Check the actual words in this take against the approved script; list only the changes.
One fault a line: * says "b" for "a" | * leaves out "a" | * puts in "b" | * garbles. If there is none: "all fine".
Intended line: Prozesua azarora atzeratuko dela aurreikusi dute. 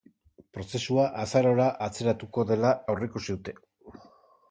all fine